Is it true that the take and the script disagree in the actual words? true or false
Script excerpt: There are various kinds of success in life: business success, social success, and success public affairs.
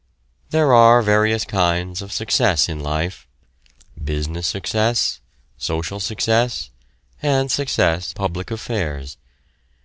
false